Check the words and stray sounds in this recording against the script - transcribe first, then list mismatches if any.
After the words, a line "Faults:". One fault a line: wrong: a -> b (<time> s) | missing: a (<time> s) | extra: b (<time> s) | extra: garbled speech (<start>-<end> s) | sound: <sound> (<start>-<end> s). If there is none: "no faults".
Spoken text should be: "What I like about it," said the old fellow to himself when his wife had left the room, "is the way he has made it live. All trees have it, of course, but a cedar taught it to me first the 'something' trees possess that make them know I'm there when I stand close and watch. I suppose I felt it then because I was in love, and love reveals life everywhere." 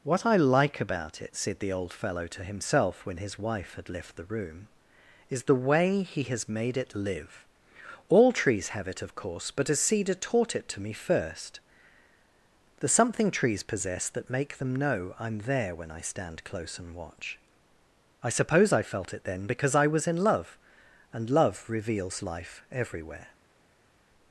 "What I like about it," said the old fellow to himself when his wife had left the room, "is the way he has made it live. All trees have it, of course, but a cedar taught it to me first the 'something' trees possess that make them know I'm there when I stand close and watch. I suppose I felt it then because I was in love, and love reveals life everywhere."
Faults:
no faults